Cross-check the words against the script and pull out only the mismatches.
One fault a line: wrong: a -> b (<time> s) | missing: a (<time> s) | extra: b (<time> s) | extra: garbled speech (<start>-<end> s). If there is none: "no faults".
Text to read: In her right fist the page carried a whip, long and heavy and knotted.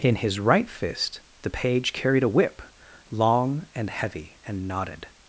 wrong: her -> his (0.1 s)